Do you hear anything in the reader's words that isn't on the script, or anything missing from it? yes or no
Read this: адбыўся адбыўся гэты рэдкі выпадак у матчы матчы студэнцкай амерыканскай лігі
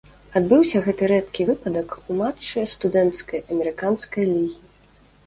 yes